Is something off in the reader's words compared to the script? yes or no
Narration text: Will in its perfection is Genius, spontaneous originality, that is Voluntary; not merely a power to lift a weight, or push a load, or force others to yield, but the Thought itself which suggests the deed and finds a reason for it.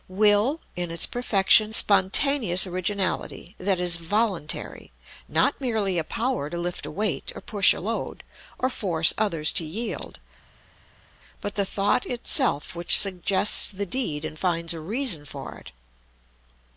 yes